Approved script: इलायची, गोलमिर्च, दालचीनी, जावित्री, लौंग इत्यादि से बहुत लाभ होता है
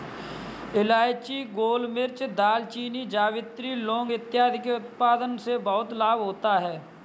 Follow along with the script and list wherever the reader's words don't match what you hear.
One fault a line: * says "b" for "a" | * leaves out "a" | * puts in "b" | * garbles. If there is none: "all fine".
* puts in "के उत्पादन"